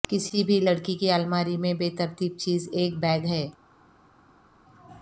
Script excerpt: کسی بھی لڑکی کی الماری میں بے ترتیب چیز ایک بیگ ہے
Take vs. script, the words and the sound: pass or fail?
pass